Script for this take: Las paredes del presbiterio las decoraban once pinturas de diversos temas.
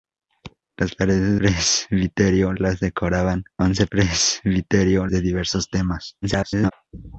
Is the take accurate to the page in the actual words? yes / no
no